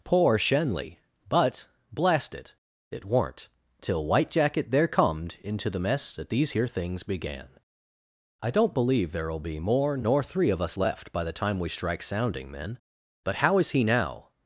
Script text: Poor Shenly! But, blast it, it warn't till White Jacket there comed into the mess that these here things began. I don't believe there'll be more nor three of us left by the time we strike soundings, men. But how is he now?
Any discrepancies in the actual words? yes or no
yes